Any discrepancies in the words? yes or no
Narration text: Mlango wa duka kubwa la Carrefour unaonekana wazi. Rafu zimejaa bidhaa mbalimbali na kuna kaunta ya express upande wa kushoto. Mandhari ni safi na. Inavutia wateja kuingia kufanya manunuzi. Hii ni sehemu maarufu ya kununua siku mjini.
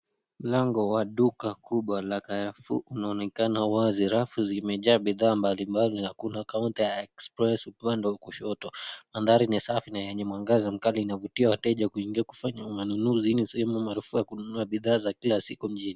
yes